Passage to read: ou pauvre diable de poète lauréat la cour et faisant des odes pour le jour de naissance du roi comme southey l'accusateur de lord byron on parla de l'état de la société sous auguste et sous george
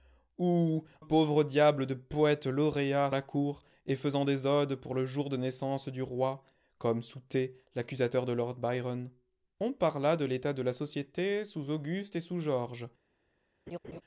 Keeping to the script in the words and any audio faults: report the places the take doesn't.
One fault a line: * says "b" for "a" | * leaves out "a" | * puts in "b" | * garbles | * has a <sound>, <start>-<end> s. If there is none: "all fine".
* has a laugh, 13.7-14.0 s